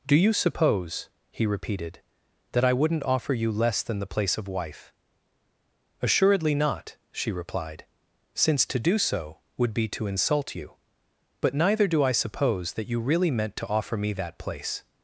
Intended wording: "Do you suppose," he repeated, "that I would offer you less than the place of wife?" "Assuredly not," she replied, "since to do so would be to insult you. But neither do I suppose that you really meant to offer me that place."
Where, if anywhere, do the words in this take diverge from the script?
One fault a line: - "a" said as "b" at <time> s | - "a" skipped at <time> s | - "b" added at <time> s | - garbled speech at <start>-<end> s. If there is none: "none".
- "would" said as "wouldn't" at 2.7 s